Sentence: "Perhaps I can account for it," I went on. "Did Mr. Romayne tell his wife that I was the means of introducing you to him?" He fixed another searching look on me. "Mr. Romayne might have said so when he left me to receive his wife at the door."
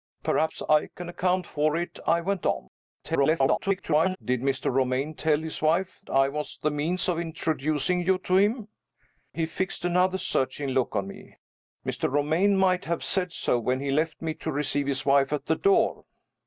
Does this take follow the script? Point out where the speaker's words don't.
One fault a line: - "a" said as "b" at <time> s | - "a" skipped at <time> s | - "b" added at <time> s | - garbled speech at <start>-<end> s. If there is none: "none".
- garbled speech at 3.0-4.2 s
- "that" skipped at 6.0 s